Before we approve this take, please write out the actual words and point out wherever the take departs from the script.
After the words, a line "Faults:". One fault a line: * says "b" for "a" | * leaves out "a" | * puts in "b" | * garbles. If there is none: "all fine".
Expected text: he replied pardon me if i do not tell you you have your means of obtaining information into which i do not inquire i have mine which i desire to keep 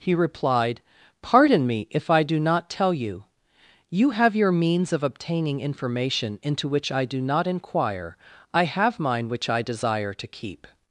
he replied pardon me if i do not tell you you have your means of obtaining information into which i do not inquire i have mine which i desire to keep
Faults:
all fine